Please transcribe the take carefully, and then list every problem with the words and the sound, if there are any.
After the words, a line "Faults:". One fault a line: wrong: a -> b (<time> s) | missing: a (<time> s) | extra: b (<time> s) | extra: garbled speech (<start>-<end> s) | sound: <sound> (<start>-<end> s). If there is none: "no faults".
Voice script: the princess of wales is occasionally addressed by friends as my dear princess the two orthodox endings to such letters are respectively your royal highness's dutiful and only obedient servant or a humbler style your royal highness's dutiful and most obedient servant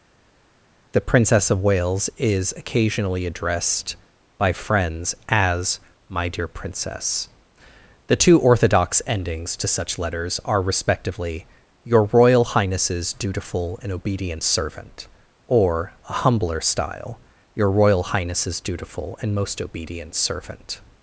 the princess of wales is occasionally addressed by friends as my dear princess the two orthodox endings to such letters are respectively your royal highness's dutiful and obedient servant or a humbler style your royal highness's dutiful and most obedient servant
Faults:
missing: only (13.9 s)